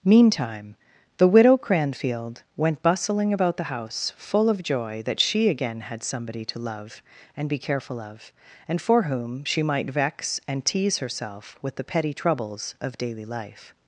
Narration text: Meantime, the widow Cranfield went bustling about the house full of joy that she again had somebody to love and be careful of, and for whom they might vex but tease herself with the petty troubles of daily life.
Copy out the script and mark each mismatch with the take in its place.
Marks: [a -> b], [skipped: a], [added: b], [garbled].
Meantime, the widow Cranfield went bustling about the house full of joy that she again had somebody to love and be careful of, and for whom [they -> she] might vex [but -> and] tease herself with the petty troubles of daily life.